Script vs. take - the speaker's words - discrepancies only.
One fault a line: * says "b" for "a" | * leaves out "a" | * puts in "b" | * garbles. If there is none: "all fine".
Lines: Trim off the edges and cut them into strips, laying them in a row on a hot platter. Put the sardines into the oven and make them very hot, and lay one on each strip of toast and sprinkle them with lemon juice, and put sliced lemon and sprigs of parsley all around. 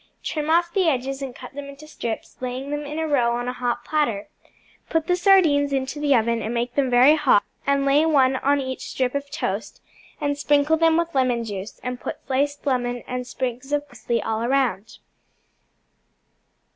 all fine